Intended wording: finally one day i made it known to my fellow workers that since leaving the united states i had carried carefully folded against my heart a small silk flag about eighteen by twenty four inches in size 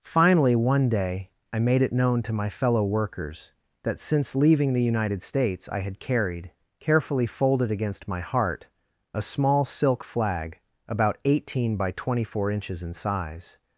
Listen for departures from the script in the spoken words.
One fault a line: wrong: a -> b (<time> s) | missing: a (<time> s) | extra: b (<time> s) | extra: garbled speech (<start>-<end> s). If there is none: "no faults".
no faults